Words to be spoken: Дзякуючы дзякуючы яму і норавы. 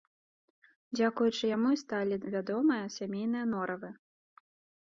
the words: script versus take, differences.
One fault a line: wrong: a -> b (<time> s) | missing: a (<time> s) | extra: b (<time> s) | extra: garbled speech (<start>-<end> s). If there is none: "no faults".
missing: дзякуючы (1.4 s)
extra: сталі вядомыя сямейныя (1.8 s)